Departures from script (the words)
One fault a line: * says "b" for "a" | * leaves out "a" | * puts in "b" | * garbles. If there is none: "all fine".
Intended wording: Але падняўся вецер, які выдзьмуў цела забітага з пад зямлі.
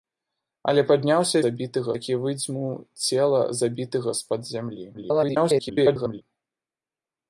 * says "забітага" for "вецер"
* garbles